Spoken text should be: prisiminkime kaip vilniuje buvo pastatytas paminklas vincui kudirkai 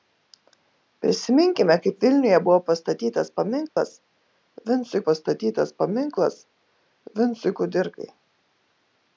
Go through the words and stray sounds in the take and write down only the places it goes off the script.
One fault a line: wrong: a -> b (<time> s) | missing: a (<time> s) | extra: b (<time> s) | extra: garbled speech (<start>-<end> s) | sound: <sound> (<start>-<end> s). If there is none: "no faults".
sound: dropout (3.7-3.8 s)
extra: pastatytas paminklas vincui (5.1 s)